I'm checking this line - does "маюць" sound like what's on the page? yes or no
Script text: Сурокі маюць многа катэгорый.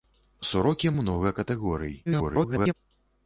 no